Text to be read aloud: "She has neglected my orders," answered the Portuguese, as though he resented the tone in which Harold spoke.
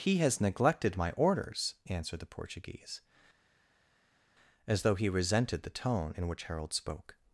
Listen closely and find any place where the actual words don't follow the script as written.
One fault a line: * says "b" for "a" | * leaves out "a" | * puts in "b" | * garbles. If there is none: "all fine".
* says "He" for "She"